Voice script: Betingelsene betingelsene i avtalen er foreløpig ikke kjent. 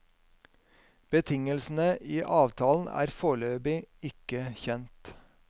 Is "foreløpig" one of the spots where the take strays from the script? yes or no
no